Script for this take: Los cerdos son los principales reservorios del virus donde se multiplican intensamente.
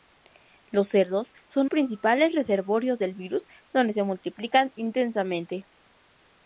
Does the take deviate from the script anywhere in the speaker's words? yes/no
yes